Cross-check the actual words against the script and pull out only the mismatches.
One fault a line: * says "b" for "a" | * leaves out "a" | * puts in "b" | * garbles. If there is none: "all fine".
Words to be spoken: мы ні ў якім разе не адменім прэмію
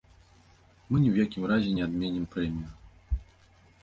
all fine